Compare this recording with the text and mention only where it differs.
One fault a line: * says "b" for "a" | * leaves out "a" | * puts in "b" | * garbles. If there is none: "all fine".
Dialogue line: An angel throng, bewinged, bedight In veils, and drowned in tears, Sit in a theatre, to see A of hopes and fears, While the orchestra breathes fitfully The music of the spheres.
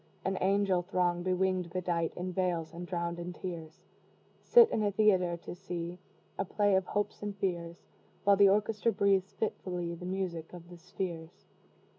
* puts in "play"